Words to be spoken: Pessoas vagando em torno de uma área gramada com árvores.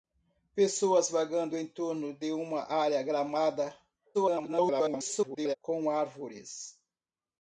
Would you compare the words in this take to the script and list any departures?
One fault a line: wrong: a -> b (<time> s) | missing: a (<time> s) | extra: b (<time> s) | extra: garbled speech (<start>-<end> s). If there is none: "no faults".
extra: garbled speech (4.1-5.6 s)